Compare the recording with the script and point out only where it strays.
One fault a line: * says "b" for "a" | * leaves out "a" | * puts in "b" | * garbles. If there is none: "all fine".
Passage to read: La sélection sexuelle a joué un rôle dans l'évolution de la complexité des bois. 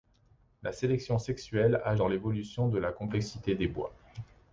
* leaves out "joué un rôle"